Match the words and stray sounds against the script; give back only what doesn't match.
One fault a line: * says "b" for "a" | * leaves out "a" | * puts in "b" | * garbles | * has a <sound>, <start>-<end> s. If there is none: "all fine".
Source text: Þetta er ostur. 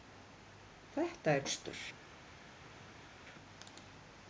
all fine